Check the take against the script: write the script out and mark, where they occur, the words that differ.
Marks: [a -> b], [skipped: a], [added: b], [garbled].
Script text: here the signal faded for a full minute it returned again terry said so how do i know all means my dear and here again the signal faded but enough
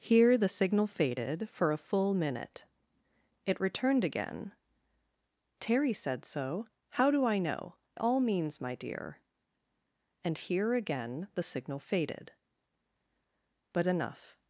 here the signal faded for a full minute it returned again terry said so how do i know all means my dear and here again the signal faded but enough